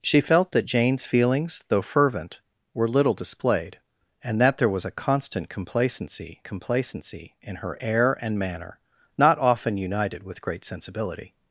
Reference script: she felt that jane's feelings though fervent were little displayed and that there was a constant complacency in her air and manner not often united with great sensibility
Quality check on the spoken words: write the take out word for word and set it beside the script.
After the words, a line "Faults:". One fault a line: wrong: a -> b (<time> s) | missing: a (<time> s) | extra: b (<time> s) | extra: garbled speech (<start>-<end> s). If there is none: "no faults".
she felt that jane's feelings though fervent were little displayed and that there was a constant complacency complacency in her air and manner not often united with great sensibility
Faults:
extra: complacency (6.4 s)